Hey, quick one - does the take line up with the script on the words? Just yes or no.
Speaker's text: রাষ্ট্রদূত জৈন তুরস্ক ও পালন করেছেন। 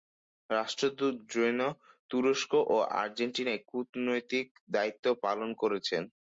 no